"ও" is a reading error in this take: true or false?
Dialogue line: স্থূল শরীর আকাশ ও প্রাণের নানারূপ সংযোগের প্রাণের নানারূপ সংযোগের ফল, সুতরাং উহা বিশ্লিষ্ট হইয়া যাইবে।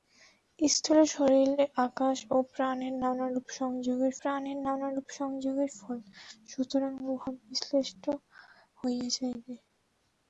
false